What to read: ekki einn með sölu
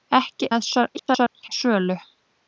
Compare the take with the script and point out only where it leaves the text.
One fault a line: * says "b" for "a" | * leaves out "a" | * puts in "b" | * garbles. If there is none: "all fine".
* leaves out "einn"
* garbles